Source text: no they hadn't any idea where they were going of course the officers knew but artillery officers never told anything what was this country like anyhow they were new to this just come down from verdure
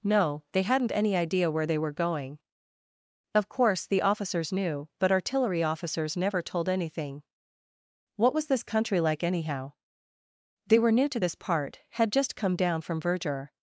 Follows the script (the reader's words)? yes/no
no